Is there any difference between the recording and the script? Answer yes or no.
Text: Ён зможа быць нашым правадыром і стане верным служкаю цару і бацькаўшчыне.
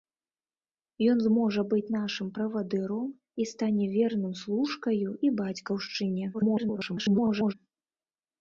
yes